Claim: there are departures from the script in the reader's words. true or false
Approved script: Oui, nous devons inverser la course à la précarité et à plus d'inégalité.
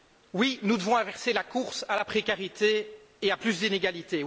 false